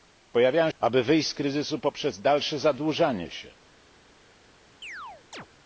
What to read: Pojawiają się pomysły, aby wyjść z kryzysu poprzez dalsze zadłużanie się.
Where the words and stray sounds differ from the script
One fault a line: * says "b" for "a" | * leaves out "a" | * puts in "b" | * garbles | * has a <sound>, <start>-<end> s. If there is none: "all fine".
* leaves out "się pomysły"
* has a chirp, 4.8-5.5 s